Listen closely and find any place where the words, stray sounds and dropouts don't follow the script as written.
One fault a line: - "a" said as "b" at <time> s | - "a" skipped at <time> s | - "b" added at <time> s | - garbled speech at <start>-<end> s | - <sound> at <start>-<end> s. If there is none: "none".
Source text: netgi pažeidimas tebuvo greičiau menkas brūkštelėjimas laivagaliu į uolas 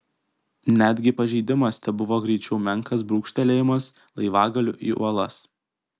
none